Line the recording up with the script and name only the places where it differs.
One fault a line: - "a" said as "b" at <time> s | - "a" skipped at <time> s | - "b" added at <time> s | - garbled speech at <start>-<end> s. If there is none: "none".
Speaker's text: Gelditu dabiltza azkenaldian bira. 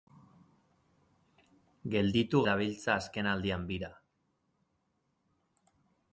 none